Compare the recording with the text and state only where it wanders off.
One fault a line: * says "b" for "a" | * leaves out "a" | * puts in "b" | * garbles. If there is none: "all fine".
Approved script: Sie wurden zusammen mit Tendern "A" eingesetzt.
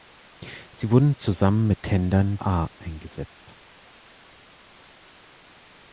all fine